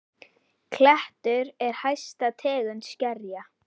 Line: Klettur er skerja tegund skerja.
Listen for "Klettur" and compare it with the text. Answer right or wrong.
right